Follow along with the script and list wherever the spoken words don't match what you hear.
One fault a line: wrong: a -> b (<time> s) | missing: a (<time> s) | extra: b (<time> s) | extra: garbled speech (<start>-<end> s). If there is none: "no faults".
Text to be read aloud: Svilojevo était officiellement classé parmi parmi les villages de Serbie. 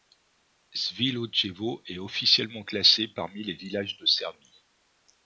wrong: était -> est (1.9 s)
missing: parmi (3.4 s)